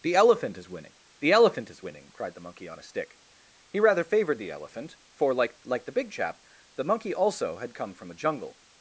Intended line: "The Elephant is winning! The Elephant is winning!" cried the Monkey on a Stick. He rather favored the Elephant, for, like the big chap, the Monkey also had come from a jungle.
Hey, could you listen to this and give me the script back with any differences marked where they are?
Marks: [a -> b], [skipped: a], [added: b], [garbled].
"The Elephant is winning! The Elephant is winning!" cried the Monkey on a Stick. He rather favored the Elephant, for, like [added: like] the big chap, the Monkey also had come from a jungle.